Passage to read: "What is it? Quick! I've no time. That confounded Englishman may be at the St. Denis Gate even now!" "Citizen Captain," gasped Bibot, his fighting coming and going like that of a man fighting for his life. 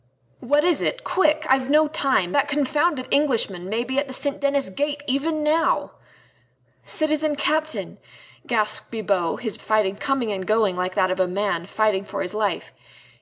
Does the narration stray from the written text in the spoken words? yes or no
no